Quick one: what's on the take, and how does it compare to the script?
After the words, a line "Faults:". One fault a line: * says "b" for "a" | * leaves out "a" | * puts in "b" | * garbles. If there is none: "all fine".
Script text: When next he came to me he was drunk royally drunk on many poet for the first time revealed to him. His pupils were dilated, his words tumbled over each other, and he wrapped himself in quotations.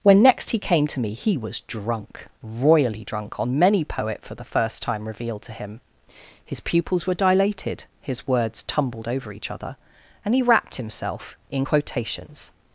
When next he came to me he was drunk royally drunk on many poet for the first time revealed to him. His pupils were dilated, his words tumbled over each other, and he wrapped himself in quotations.
Faults:
all fine